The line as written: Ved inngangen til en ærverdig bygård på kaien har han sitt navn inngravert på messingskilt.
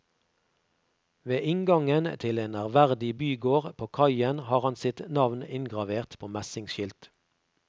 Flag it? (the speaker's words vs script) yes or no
no